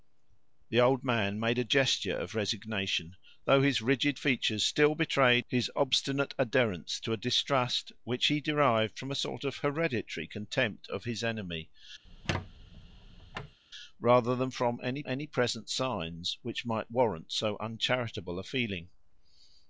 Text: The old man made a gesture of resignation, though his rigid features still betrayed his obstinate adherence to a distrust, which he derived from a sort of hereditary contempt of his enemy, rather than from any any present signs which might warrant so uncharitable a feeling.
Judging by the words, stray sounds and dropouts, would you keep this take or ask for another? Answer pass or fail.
fail